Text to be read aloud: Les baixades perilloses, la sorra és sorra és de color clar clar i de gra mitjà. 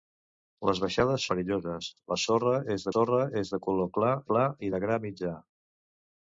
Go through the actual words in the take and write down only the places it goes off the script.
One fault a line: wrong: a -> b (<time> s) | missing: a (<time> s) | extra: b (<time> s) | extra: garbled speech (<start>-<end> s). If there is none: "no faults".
no faults